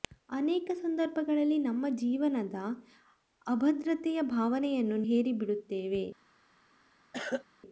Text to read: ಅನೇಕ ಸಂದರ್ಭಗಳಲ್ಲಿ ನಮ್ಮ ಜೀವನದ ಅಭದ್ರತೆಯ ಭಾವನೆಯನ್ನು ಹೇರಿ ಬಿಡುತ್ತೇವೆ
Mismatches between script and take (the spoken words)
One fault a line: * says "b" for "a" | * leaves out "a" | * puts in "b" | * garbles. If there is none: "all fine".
all fine